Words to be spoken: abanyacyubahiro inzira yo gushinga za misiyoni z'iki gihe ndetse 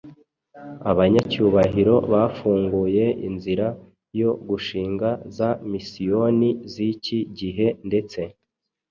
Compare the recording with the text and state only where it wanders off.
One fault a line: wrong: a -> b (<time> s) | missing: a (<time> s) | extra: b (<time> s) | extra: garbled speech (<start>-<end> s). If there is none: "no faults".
extra: bafunguye (2.1 s)